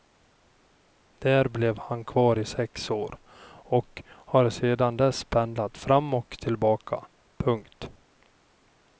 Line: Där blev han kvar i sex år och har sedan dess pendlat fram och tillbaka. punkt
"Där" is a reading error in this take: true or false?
false